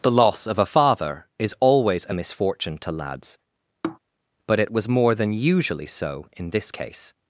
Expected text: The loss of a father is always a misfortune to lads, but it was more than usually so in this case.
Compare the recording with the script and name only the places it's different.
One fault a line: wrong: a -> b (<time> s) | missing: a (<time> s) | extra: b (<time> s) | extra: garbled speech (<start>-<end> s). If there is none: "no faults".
no faults